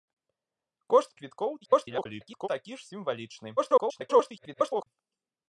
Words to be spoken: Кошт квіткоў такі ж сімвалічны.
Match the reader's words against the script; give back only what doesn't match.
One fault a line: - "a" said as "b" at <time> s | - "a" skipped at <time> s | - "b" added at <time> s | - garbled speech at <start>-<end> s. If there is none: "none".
- garbled speech at 1.6-2.5 s
- garbled speech at 3.6-4.9 s